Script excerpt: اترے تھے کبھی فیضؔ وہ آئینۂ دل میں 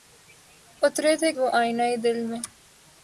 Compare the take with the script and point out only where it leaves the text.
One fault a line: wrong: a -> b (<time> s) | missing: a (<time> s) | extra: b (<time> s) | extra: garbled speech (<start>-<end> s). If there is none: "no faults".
missing: کبھی فیضؔ (1.3 s)